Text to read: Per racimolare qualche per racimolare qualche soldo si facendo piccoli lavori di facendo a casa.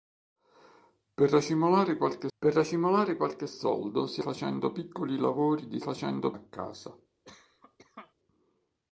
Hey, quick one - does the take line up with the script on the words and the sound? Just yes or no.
no